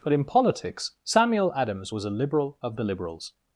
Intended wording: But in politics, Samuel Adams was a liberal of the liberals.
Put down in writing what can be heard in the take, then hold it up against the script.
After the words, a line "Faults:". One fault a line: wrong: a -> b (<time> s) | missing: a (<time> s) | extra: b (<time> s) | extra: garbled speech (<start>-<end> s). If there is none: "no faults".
But in politics, Samuel Adams was a liberal of the liberals.
Faults:
no faults